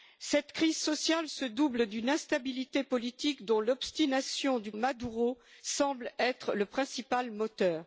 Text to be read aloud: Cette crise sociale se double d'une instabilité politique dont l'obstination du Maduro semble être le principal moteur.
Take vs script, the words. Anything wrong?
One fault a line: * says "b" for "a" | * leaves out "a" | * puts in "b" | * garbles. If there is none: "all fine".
all fine